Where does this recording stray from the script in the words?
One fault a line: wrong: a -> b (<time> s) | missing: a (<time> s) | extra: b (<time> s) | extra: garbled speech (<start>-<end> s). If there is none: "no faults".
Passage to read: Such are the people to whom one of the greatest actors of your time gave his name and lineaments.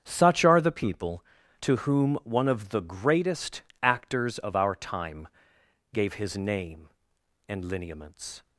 wrong: your -> our (4.5 s)